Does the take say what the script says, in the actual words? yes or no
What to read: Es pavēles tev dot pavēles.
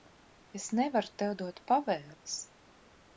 no